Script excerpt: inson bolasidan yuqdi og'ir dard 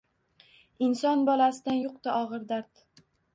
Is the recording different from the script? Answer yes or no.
no